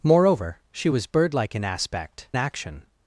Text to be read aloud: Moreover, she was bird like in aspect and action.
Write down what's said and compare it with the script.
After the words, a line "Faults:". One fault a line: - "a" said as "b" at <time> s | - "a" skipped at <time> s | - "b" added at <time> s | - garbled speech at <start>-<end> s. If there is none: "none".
Moreover, she was bird like in aspect action.
Faults:
- "and" skipped at 2.3 s